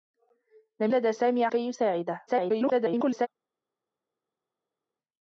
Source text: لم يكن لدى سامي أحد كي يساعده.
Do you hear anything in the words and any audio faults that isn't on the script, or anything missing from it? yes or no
yes